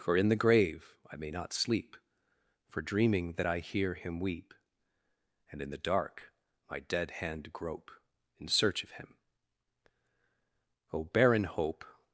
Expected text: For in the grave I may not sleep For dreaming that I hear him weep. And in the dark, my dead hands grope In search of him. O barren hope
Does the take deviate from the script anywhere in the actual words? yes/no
yes